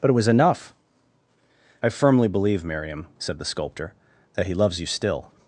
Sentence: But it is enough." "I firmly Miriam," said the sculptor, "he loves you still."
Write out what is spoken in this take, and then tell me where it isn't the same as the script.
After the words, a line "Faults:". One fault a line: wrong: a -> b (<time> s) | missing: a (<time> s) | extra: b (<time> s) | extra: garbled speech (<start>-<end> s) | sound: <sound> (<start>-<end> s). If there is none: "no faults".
But it was enough." "I firmly believe, Miriam," said the sculptor, "that he loves you still."
Faults:
wrong: is -> was (0.1 s)
extra: believe (2.3 s)
extra: that (4.3 s)